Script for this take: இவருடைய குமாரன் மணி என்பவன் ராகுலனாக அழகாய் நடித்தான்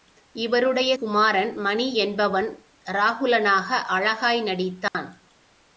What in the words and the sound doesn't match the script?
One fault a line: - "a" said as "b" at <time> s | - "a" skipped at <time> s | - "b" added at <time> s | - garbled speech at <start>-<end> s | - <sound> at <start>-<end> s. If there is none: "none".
- dropout at 4.9-4.9 s